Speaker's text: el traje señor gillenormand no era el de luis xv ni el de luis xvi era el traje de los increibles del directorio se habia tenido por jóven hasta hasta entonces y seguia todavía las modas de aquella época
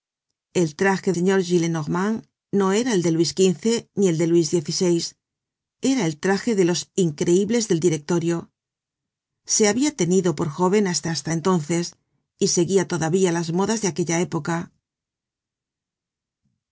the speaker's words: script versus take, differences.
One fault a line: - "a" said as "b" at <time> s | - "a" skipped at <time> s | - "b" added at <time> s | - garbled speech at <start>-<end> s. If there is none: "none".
none